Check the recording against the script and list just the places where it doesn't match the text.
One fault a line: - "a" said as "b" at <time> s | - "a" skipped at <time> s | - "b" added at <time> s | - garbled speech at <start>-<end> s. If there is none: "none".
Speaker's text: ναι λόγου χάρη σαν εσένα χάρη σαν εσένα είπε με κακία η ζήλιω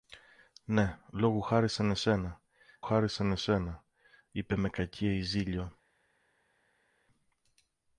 none